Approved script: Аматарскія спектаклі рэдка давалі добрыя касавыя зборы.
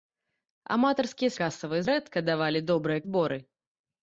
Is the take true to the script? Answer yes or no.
no